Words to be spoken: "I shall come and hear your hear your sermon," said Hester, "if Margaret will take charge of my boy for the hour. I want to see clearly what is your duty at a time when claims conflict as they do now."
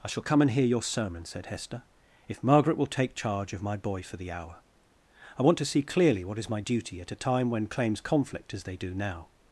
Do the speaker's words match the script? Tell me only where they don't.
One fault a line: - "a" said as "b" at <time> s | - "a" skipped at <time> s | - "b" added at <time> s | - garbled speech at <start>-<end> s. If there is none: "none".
- "hear your" skipped at 0.8 s
- "your" said as "my" at 6.5 s